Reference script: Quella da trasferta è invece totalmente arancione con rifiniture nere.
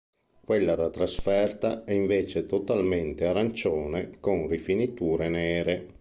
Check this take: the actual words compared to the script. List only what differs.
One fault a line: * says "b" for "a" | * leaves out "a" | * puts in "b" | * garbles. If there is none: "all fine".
all fine